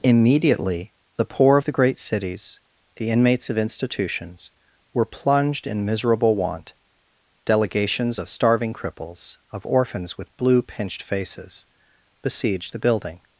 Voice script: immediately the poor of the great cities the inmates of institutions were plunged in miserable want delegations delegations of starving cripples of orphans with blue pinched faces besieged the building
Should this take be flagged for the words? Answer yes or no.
yes